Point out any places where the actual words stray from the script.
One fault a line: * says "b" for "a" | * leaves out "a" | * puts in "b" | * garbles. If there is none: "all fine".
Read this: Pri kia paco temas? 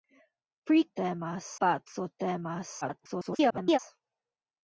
* says "temas" for "kia"
* garbles